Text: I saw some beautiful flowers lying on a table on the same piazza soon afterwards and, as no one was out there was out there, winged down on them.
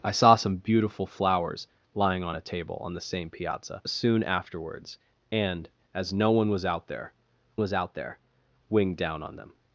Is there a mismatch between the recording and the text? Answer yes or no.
no